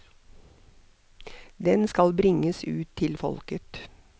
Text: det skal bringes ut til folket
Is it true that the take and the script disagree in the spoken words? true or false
true